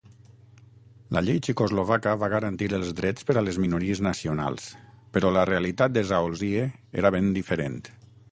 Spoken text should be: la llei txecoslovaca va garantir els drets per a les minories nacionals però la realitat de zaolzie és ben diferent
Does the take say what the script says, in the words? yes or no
no